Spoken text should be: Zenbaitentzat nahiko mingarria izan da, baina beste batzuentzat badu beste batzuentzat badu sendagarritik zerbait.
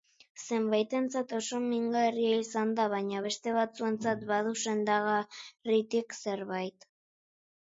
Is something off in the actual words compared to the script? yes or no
yes